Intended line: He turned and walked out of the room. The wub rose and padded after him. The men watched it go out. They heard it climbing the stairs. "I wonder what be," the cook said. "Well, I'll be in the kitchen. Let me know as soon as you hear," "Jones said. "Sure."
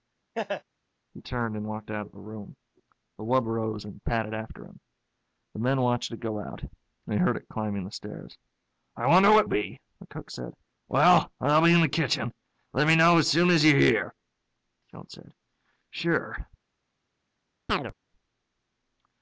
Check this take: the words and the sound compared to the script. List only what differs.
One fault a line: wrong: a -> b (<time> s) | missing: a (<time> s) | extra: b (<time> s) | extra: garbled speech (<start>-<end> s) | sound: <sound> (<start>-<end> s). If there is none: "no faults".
sound: laugh (0.3-0.6 s)
sound: chirp (17.7-17.9 s)